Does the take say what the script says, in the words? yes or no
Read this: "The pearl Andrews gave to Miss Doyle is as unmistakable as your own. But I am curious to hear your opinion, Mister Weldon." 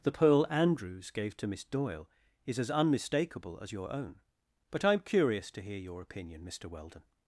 yes